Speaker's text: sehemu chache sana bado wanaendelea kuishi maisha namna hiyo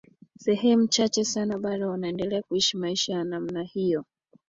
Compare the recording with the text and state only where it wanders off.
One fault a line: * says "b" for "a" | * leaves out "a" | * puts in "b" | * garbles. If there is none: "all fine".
* puts in "ya"